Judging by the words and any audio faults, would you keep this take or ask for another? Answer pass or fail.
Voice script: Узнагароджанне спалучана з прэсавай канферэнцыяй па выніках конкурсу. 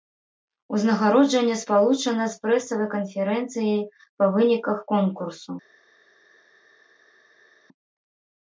pass